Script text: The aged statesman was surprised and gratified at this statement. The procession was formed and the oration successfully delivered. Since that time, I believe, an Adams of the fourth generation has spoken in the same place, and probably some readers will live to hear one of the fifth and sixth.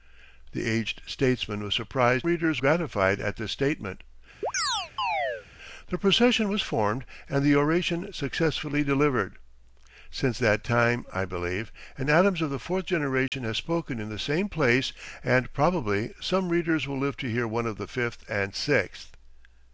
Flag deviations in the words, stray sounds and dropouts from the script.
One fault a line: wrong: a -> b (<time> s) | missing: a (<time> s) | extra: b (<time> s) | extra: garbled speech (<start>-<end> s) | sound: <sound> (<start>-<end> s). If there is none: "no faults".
wrong: and -> readers (2.2 s)
sound: chirp (4.4-5.5 s)
sound: dropout (13.3-13.3 s)